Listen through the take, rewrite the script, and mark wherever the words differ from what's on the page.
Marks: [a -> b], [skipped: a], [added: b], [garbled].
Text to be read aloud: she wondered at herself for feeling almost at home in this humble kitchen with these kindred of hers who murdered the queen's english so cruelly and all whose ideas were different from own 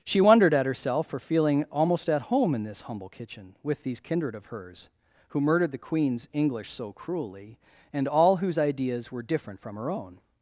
she wondered at herself for feeling almost at home in this humble kitchen with these kindred of hers who murdered the queen's english so cruelly and all whose ideas were different from [added: her] own